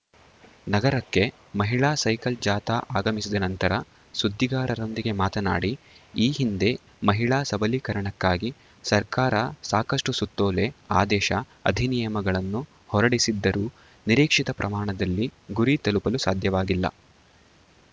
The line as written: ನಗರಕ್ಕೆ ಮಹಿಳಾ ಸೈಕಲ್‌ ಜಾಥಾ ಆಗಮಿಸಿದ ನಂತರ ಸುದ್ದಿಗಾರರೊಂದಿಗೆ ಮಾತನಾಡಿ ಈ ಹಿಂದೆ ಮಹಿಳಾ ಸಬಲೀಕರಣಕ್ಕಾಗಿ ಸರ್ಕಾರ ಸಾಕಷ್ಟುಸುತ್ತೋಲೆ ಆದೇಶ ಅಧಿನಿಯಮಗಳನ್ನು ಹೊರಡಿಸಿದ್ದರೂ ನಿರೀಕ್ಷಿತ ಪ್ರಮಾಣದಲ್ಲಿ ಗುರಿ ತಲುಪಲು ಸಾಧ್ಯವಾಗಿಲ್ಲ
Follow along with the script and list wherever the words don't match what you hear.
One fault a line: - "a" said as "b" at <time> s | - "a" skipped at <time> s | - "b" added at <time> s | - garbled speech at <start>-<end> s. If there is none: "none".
none